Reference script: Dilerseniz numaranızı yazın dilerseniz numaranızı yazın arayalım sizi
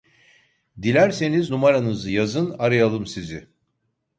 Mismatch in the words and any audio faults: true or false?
true